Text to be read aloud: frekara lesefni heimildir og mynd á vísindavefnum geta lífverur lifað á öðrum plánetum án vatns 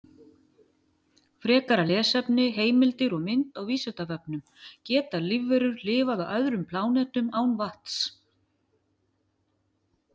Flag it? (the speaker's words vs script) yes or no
no